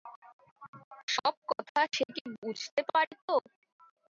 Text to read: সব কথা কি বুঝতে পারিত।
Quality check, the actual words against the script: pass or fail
fail